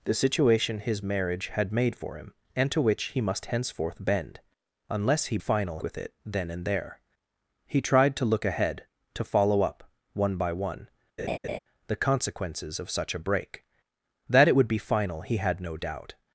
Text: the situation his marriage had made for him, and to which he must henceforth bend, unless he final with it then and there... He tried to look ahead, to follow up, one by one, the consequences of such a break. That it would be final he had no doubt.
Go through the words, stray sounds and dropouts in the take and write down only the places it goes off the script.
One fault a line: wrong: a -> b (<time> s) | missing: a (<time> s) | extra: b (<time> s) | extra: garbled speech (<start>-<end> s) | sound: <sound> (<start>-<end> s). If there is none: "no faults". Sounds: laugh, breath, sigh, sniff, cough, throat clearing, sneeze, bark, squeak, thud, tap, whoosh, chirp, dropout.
sound: laugh (11.2-11.6 s)